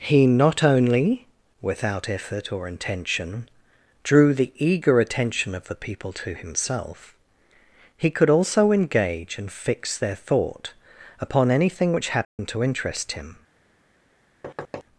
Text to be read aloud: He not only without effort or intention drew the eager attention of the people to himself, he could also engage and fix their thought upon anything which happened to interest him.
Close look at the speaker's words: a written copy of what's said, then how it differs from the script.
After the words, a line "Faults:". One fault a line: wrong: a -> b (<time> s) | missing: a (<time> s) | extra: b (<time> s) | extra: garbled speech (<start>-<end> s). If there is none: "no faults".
He not only without effort or intention drew the eager attention of the people to himself, he could also engage and fix their thought upon anything which happened to interest him.
Faults:
no faults